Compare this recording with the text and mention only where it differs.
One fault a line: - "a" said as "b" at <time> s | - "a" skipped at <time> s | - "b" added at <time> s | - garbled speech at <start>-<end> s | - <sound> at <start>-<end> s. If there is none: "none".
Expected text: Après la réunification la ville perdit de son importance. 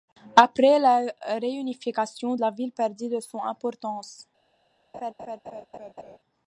- laugh at 4.9-6.2 s